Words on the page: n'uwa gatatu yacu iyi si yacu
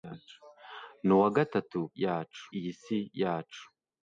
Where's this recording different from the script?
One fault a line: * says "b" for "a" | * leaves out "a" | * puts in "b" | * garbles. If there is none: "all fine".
all fine